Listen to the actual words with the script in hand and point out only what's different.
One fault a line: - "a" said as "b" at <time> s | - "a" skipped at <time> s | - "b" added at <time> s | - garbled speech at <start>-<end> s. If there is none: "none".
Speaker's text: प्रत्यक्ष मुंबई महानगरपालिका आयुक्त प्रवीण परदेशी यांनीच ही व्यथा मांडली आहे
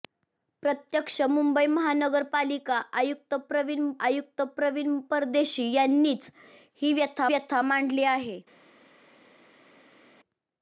- "आयुक्त प्रवीण" added at 4.1 s
- "व्यथा" added at 7.3 s